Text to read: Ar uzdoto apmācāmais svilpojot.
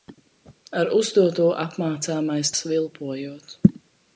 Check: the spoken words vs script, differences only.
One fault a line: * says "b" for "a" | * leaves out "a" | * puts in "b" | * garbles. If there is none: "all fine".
all fine